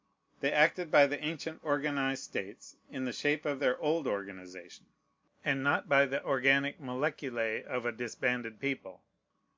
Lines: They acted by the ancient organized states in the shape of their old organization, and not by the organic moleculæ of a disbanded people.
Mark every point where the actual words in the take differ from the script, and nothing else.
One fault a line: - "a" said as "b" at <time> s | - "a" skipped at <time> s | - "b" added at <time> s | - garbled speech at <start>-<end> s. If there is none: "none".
none